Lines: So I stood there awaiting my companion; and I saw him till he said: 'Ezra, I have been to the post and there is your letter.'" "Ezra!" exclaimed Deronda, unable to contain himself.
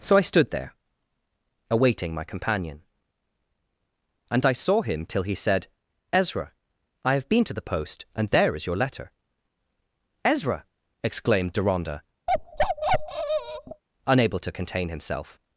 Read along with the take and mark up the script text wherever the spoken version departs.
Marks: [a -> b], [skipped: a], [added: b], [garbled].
So I stood there awaiting my companion; and I saw him till he said: 'Ezra, I have been to the post and there is your letter.'" "Ezra!" exclaimed Deronda, unable to contain himself.